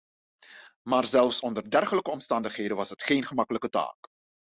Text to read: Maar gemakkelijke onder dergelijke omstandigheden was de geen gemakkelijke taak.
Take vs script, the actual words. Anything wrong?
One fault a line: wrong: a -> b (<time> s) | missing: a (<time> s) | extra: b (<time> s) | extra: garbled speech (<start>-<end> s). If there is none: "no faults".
wrong: gemakkelijke -> zelfs (1.1 s)
wrong: de -> het (2.9 s)